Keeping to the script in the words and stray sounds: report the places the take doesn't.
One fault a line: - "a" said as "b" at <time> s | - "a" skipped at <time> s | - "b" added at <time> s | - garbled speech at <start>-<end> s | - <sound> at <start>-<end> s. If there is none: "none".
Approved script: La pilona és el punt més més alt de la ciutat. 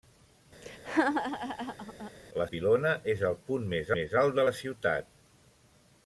- laugh at 0.6-2.1 s